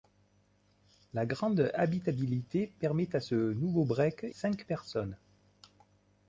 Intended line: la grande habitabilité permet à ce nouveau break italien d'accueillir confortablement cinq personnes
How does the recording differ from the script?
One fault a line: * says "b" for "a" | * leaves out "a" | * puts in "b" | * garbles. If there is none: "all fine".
* leaves out "italien d'accueillir confortablement"